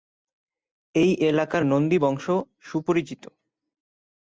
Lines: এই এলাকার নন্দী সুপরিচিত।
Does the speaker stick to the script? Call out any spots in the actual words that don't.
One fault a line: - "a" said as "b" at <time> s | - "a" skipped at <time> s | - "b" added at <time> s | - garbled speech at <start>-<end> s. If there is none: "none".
- "বংশ" added at 2.0 s